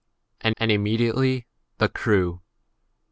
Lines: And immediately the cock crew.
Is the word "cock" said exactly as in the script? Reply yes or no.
no